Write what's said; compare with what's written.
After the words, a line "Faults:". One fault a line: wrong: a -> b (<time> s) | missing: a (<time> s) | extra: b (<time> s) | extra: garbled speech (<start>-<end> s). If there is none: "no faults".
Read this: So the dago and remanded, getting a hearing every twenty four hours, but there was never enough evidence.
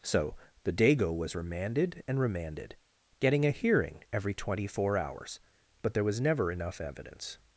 So the dago was remanded and remanded, getting a hearing every twenty four hours, but there was never enough evidence.
Faults:
extra: was remanded (1.1 s)